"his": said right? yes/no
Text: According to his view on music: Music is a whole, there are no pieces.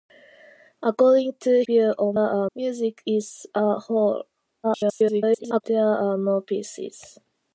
no